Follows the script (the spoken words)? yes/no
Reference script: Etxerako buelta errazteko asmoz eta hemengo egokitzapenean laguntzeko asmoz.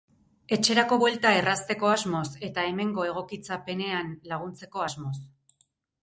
yes